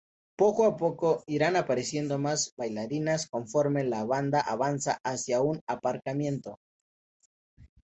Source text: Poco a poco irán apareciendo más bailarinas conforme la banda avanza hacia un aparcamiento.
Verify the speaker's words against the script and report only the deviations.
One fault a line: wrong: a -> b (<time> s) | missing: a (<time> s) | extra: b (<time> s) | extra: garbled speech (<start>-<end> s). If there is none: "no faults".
no faults